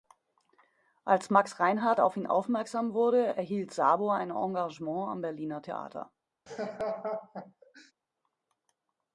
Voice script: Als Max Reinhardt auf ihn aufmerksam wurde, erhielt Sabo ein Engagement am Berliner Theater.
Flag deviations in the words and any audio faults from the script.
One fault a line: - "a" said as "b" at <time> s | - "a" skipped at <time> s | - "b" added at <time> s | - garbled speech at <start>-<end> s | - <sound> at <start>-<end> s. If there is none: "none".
- laugh at 6.5-7.9 s